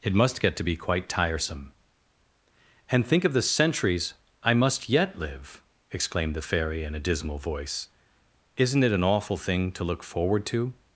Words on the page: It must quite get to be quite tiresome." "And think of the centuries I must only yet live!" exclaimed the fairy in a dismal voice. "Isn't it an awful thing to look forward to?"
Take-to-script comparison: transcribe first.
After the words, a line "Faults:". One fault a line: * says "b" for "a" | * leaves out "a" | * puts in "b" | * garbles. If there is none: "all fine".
It must get to be quite tiresome." "And think of the centuries I must yet live!" exclaimed the fairy in a dismal voice. "Isn't it an awful thing to look forward to?"
Faults:
* leaves out "quite"
* leaves out "only"